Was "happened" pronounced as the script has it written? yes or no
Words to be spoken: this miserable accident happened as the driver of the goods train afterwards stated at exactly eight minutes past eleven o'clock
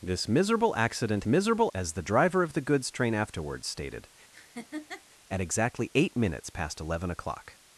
no